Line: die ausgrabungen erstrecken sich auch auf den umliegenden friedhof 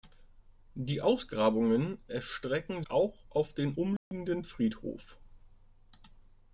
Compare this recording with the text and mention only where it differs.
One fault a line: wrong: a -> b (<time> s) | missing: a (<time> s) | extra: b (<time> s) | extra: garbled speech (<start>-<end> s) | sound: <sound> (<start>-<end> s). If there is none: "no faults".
missing: sich (2.8 s)
sound: dropout (4.0-4.1 s)